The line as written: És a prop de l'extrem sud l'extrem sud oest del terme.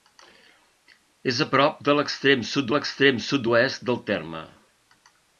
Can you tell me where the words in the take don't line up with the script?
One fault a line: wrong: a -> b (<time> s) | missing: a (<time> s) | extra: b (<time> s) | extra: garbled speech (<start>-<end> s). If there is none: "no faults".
no faults